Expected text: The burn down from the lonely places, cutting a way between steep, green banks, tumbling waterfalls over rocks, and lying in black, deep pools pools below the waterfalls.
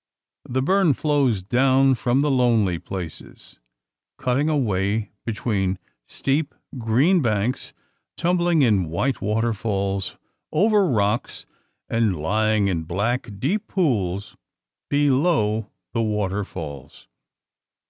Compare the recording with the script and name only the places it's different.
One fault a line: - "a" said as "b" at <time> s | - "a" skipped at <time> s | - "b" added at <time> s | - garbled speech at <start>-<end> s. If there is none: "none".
- "flows" added at 0.9 s
- "in white" added at 8.6 s
- "pools" skipped at 14.4 s